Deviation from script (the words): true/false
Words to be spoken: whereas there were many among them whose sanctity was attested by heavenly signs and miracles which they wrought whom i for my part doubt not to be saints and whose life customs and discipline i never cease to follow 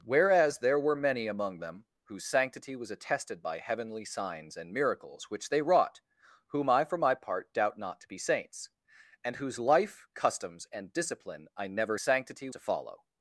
true